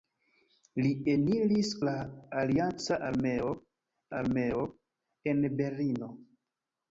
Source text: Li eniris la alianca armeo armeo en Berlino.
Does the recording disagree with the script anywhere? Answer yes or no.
no